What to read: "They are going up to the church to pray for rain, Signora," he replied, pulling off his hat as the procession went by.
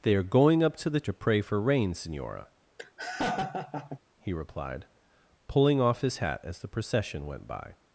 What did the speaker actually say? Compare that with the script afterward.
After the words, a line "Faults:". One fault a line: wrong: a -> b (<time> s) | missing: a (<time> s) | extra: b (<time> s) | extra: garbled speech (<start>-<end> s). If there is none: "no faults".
"They are going up to the to pray for rain, Signora," he replied, pulling off his hat as the procession went by.
Faults:
missing: church (1.0 s)